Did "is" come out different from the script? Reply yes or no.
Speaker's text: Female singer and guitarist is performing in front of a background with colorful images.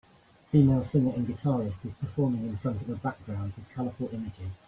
no